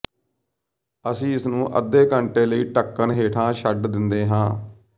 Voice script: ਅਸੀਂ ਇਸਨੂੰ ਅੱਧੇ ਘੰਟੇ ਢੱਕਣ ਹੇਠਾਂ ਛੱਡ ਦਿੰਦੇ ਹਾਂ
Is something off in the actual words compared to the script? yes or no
yes